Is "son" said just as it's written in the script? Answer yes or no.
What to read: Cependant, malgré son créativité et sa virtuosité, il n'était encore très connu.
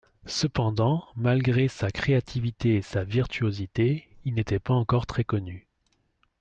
no